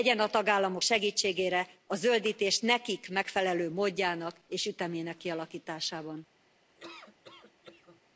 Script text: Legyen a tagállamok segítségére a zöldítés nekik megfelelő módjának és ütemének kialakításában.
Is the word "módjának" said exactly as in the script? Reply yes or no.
yes